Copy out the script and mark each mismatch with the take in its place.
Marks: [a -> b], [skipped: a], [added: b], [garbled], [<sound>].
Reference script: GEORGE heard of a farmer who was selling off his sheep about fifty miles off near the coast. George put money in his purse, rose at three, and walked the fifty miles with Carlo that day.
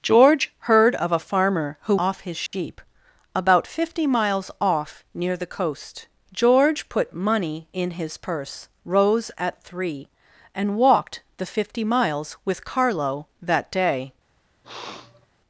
GEORGE heard of a farmer who [skipped: was selling] off his sheep [dropout] about fifty miles off near the coast. George put money in his purse, rose at three, and walked the fifty miles with Carlo that day. [sniff]